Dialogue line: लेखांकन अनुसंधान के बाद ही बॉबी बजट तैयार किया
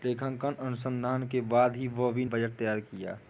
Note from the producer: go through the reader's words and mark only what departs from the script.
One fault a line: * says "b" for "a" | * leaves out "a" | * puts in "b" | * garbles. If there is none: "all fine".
all fine